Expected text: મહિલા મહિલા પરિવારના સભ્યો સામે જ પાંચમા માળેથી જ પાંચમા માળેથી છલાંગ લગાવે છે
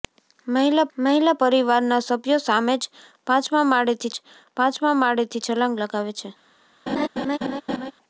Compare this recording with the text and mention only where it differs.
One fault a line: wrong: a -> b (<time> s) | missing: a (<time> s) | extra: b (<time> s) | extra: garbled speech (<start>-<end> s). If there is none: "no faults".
no faults